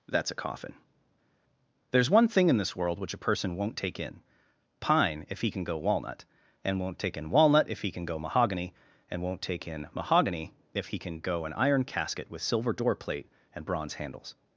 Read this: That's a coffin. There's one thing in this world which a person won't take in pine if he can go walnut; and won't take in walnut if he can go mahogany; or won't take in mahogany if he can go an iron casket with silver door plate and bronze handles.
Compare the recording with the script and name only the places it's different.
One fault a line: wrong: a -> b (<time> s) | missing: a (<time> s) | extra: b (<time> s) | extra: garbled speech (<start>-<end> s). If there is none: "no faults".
wrong: or -> and (9.1 s)